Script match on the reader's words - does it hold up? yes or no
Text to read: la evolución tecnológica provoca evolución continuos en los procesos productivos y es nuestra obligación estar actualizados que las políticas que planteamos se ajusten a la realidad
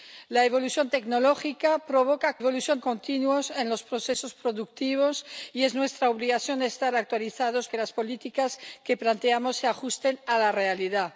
yes